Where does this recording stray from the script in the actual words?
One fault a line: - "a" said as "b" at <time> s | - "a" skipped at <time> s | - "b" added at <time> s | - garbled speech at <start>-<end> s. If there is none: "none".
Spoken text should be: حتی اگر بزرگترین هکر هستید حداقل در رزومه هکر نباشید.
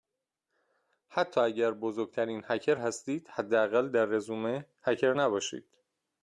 none